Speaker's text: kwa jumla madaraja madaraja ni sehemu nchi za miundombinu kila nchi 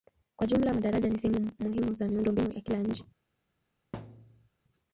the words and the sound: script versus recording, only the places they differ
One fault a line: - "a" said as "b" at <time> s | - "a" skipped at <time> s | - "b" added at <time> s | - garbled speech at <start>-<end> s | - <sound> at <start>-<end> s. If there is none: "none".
- "madaraja" skipped at 1.1 s
- "nchi" said as "muhimu" at 1.6 s
- "ya" added at 2.5 s
- thud at 3.9-4.5 s